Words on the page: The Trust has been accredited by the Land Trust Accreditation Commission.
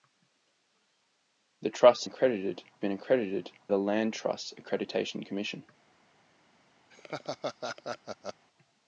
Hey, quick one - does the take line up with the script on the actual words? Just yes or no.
no